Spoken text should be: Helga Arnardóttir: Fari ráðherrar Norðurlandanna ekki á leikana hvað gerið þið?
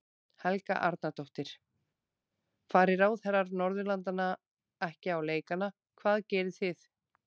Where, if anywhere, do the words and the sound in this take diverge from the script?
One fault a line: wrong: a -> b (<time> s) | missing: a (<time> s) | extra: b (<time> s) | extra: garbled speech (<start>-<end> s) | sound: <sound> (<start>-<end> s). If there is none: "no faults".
no faults